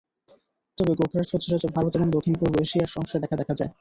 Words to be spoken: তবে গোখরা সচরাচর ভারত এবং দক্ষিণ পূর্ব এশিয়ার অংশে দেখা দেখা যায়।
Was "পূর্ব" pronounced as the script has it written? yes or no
yes